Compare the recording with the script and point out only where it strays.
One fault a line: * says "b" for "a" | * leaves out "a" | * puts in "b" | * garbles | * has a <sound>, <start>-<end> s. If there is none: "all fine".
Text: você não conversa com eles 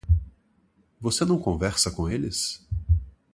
all fine